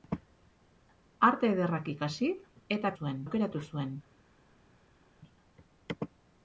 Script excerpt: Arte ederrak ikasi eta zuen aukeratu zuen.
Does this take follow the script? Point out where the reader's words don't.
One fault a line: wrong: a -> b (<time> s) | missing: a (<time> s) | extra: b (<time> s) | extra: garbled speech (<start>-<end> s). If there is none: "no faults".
no faults